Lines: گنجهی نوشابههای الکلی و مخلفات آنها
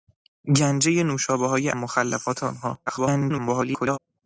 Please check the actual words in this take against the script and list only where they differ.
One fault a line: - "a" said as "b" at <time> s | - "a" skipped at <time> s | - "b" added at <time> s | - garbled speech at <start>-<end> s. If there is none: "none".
- "الکلی و" skipped at 1.7 s
- garbled speech at 2.9-4.0 s